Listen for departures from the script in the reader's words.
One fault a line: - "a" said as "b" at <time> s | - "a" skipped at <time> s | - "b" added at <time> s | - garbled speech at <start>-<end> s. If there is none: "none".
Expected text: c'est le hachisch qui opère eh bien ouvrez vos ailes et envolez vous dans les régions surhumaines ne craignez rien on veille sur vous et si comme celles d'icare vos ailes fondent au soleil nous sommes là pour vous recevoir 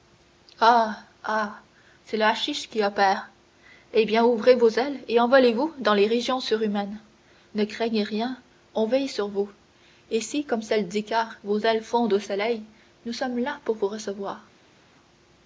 none